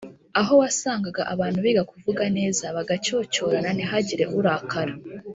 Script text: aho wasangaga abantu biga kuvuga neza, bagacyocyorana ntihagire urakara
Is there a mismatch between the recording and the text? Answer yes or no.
no